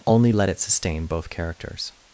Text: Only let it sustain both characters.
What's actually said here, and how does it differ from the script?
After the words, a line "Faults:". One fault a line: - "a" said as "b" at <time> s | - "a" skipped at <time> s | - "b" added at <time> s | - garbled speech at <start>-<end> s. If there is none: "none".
Only let it sustain both characters.
Faults:
none